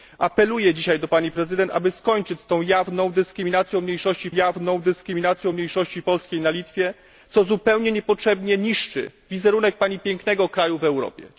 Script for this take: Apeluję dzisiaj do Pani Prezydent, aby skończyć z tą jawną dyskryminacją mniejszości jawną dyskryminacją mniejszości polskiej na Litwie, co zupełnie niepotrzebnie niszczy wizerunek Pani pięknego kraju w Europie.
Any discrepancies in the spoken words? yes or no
no